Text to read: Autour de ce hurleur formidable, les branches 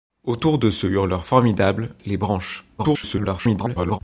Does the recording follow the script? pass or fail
fail